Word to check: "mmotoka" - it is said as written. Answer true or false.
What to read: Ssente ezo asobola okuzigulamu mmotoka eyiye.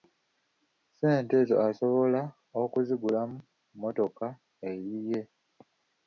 true